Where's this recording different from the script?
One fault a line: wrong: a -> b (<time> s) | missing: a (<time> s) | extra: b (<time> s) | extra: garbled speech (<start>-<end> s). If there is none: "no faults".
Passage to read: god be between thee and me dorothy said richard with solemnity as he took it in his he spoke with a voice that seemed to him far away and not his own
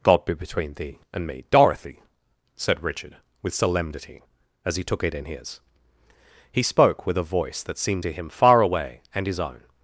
missing: not (9.3 s)